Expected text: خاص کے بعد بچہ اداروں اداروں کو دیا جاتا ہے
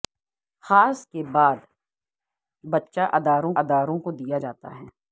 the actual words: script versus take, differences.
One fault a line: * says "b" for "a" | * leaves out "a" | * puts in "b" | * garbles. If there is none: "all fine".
all fine